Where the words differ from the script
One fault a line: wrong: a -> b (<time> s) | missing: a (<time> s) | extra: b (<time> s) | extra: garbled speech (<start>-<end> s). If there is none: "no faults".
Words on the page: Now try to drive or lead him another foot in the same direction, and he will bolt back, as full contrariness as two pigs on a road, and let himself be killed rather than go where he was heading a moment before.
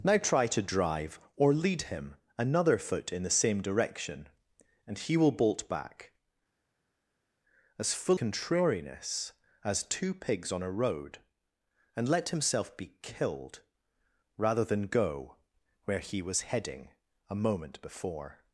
no faults